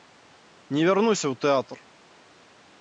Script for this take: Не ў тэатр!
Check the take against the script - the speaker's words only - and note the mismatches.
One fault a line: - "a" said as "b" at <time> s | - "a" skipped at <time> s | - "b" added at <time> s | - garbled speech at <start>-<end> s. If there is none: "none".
- "вярнуся" added at 0.9 s